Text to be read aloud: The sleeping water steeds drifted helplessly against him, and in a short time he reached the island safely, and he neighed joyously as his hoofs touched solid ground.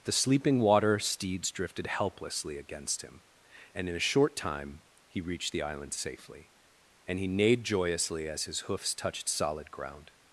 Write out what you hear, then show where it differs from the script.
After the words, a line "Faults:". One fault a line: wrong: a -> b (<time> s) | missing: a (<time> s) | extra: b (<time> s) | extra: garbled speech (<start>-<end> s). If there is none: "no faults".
The sleeping water steeds drifted helplessly against him, and in a short time he reached the island safely, and he neighed joyously as his hoofs touched solid ground.
Faults:
no faults